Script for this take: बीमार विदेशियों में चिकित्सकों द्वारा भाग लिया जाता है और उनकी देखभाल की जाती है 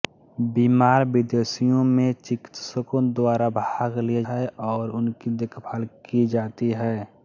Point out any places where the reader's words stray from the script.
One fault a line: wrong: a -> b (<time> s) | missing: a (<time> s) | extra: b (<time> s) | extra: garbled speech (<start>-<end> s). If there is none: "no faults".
missing: जाता (4.2 s)